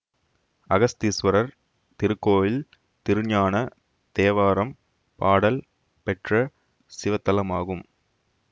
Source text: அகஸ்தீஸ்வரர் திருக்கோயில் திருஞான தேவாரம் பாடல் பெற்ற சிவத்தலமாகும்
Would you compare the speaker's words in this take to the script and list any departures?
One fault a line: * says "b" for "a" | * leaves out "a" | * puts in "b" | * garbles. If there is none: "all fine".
all fine